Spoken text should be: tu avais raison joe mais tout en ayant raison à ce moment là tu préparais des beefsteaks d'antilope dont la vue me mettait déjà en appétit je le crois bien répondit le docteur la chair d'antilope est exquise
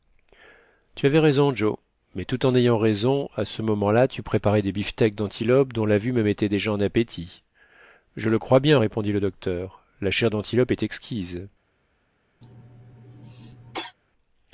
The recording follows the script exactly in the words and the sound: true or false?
false